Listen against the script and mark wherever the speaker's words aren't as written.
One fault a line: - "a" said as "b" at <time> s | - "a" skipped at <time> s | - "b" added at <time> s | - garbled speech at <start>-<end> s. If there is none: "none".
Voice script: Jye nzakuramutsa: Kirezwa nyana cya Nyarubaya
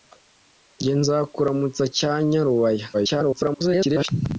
- "Kirezwa nyana" skipped at 1.8 s
- garbled speech at 2.9-4.1 s